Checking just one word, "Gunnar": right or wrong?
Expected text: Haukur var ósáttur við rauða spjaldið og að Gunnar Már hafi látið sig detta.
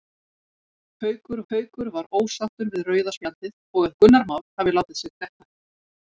right